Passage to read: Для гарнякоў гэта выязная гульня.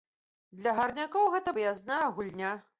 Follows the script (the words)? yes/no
yes